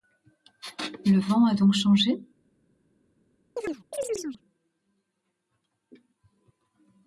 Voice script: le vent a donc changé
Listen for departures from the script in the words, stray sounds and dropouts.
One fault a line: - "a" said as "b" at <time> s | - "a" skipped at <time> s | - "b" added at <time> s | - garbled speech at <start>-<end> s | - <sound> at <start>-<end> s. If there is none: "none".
- chirp at 3.6-4.4 s